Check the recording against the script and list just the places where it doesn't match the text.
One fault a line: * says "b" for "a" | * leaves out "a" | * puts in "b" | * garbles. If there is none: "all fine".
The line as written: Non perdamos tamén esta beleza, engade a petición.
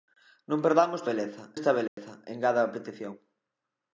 * says "beleza" for "tamén"